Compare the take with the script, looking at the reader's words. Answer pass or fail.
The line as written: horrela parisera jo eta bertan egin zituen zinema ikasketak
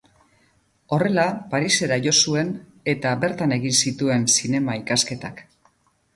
fail